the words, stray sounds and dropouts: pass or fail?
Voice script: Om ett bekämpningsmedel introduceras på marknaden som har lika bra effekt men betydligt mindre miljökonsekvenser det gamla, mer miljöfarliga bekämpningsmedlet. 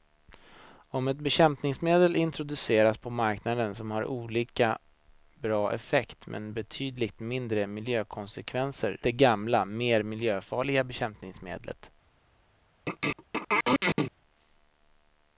fail